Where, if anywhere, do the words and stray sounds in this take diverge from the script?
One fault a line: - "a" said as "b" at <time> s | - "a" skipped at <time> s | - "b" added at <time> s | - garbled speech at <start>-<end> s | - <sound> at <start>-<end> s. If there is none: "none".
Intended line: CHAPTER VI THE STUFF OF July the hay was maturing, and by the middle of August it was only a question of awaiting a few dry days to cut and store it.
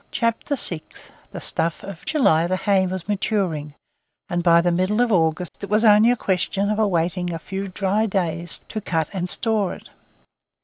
- dropout at 5.5-5.5 s